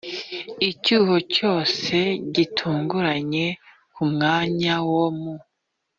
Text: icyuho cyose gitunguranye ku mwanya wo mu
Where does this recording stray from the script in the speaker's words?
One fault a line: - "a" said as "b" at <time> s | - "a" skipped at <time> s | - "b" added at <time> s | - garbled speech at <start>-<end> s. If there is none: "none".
none